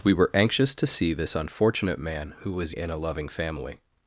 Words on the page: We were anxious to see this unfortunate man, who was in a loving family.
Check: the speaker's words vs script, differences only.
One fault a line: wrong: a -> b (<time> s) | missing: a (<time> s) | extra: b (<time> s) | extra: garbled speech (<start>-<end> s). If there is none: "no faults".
no faults